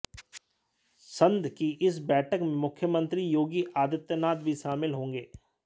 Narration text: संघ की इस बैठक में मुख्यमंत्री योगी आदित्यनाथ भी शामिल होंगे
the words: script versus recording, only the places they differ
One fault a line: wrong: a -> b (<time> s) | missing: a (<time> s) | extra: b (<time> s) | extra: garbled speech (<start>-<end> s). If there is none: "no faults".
no faults